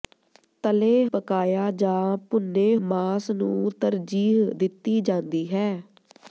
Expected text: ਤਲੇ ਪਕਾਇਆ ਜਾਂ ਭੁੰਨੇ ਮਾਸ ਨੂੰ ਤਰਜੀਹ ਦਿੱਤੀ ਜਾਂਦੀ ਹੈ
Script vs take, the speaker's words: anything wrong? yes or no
no